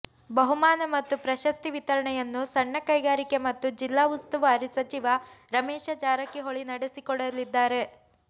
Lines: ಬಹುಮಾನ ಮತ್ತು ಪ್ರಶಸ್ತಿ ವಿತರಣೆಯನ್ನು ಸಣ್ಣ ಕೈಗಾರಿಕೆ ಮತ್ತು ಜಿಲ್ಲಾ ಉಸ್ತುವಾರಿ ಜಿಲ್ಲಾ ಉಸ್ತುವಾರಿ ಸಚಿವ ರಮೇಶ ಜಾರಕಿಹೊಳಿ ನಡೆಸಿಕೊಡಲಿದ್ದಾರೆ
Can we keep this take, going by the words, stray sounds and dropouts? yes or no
no